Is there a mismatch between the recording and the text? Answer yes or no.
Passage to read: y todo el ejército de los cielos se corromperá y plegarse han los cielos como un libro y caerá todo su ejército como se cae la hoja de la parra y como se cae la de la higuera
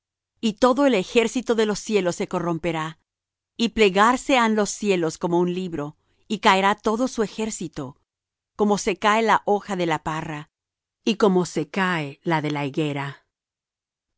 no